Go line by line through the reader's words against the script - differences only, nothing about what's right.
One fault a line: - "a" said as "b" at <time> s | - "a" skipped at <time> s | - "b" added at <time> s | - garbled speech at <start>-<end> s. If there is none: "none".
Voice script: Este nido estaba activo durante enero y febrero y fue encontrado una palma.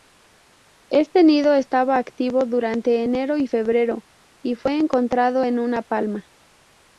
- "en" added at 5.4 s